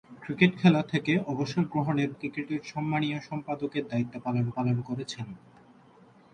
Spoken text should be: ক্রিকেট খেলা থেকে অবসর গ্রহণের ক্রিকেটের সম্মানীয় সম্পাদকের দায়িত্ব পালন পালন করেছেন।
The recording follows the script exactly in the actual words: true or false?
true